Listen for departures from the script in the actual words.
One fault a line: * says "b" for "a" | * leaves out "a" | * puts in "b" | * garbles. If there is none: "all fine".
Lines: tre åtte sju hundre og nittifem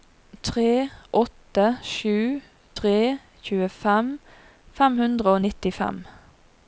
* puts in "tre tjuefem fem"